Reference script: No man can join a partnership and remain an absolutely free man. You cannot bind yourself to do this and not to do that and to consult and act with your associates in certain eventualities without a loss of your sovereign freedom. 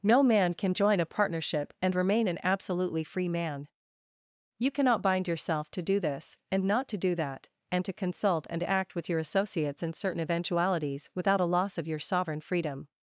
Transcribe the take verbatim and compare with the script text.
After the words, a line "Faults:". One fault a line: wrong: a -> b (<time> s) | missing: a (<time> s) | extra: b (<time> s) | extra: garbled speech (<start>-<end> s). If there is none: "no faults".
No man can join a partnership and remain an absolutely free man. You cannot bind yourself to do this and not to do that and to consult and act with your associates in certain eventualities without a loss of your sovereign freedom.
Faults:
no faults